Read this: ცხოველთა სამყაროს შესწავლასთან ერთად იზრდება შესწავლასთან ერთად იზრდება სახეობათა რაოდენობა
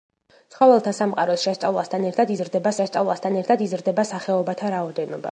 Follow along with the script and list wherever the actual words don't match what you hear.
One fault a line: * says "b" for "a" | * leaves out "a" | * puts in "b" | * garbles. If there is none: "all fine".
all fine